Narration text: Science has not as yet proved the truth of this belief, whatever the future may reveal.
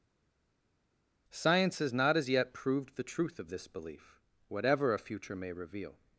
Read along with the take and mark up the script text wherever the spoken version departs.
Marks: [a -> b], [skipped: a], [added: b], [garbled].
Science has not as yet proved the truth of this belief, whatever [the -> a] future may reveal.